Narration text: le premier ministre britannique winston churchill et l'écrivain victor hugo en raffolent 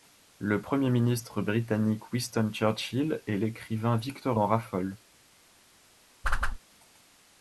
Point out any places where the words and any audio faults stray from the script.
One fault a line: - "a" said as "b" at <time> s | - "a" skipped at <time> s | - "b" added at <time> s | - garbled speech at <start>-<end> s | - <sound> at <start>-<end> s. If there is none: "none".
- "hugo" skipped at 4.4 s
- whoosh at 6.2-6.6 s